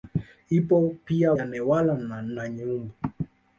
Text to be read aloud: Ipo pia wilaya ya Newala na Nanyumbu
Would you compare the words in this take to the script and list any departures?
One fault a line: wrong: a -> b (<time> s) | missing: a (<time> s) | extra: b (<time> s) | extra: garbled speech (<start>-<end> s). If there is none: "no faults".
missing: wilaya (1.3 s)